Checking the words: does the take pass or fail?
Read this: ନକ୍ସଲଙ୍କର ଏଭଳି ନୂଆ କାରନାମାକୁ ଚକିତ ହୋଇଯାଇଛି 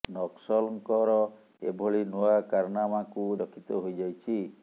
pass